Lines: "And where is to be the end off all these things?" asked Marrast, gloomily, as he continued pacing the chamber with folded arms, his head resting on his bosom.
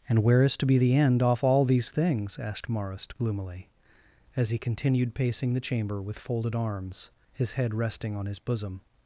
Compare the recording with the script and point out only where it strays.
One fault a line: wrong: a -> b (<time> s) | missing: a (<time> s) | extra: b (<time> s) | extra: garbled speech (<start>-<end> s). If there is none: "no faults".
no faults